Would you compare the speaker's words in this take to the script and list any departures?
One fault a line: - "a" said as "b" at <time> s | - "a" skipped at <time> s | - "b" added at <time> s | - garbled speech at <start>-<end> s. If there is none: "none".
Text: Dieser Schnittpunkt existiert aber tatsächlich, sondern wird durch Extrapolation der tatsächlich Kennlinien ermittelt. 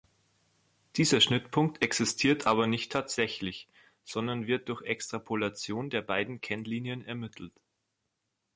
- "nicht" added at 2.6 s
- "tatsächlich" said as "beiden" at 6.0 s